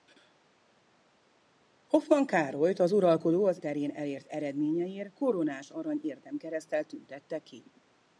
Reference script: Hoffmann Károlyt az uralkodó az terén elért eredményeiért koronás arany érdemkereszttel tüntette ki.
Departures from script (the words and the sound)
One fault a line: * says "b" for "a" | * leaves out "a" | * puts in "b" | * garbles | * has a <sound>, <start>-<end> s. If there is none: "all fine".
all fine